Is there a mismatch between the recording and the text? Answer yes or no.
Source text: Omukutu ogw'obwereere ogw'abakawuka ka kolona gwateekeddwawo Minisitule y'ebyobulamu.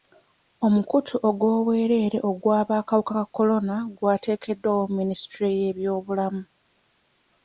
no